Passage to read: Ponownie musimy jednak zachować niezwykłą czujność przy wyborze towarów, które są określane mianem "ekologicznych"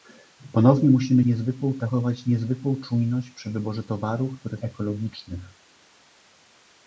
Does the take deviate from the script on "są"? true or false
true